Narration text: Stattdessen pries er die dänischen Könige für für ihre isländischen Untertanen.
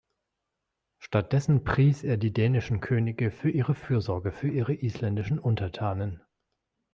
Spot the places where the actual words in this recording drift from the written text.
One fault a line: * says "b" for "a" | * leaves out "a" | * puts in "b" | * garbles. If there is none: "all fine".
* puts in "ihre Fürsorge"